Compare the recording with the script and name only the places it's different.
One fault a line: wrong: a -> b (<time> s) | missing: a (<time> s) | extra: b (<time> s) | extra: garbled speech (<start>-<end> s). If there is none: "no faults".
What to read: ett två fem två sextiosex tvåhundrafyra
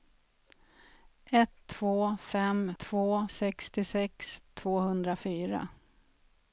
no faults